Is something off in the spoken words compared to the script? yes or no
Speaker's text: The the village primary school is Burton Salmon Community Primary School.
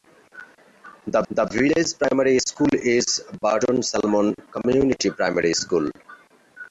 no